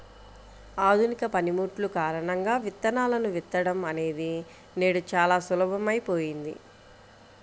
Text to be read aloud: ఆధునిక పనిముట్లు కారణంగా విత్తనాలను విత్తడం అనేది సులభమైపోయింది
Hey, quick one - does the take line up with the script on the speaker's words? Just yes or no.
no